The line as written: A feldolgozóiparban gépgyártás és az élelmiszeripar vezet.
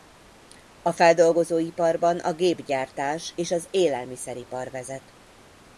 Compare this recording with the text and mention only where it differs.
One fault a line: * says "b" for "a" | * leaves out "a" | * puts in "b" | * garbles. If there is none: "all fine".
* puts in "a"